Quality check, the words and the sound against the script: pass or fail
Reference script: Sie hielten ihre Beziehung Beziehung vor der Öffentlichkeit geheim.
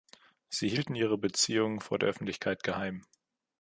fail